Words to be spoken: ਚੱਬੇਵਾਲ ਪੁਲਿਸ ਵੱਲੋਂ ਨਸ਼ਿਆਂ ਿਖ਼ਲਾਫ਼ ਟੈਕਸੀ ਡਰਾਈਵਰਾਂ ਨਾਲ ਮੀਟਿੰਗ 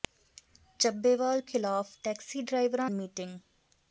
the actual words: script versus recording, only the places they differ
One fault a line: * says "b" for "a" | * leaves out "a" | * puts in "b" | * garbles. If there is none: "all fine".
* leaves out "ਪੁਲਿਸ ਵੱਲੋਂ ਨਸ਼ਿਆਂ"
* leaves out "ਨਾਲ"